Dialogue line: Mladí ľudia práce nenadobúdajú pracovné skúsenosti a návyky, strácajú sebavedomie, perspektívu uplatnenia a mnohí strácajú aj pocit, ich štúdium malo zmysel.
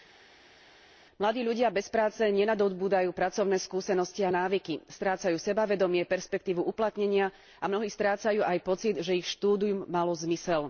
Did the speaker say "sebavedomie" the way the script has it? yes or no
yes